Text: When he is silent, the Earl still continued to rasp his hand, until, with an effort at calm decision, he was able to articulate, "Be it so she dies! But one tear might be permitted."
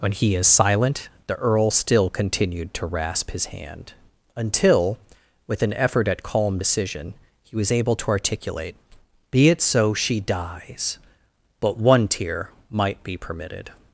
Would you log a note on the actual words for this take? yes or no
no